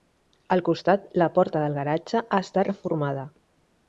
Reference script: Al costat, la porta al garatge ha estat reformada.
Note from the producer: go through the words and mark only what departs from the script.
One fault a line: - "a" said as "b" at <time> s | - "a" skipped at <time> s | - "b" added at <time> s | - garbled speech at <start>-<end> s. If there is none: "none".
- "al" said as "del" at 1.6 s